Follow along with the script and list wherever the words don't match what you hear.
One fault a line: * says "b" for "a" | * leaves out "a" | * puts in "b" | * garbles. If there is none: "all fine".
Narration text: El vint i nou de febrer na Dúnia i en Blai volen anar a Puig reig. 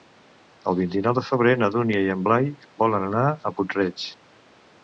all fine